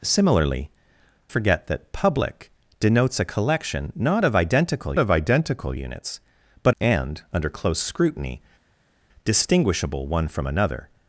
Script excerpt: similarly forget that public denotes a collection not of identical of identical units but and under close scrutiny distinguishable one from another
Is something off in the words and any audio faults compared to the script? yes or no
no